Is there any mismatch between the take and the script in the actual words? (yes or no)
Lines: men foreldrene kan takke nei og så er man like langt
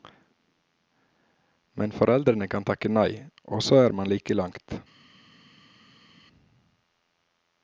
no